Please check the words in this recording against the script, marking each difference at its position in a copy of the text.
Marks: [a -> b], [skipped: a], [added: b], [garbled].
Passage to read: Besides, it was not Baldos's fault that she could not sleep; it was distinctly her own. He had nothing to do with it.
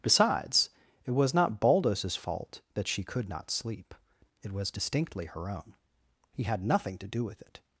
Besides, it was not Baldos's fault that she could not sleep; it was distinctly her own. He had nothing to do with it.